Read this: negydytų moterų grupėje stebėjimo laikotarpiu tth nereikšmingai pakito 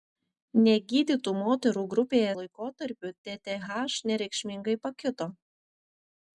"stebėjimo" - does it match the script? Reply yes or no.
no